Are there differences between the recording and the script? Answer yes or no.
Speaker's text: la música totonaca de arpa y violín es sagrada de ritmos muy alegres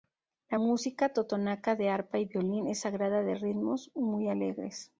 no